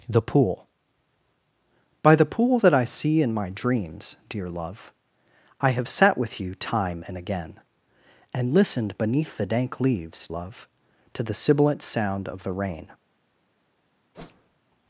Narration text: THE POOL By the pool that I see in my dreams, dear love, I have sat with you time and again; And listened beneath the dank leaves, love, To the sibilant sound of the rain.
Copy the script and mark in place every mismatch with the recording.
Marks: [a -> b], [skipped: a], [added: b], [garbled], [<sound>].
THE POOL By the pool that I see in my dreams, dear love, I have sat with you time and again; And listened beneath the dank leaves, love, To the sibilant sound of the rain. [whoosh]